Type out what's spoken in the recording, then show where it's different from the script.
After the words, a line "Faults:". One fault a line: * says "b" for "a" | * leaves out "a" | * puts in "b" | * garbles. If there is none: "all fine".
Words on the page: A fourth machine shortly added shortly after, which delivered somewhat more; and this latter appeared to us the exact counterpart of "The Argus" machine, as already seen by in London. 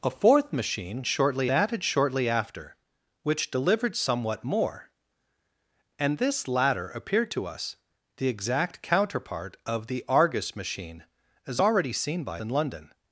A fourth machine shortly added shortly after, which delivered somewhat more; and this latter appeared to us the exact counterpart of "The Argus" machine, as already seen by in London.
Faults:
all fine